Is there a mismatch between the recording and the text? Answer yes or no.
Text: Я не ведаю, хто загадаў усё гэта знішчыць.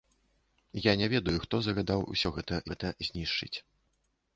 yes